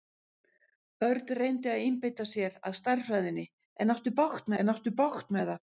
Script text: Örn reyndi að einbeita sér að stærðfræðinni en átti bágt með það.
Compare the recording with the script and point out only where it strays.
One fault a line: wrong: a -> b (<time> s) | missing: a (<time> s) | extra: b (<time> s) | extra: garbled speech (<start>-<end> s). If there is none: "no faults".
extra: en átti bágt (4.6 s)